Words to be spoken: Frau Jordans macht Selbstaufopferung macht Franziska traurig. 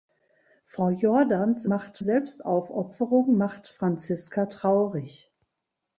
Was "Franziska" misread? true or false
false